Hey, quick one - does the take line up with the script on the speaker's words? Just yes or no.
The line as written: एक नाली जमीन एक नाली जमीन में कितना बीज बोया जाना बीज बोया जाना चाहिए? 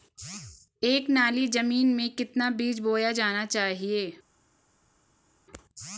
no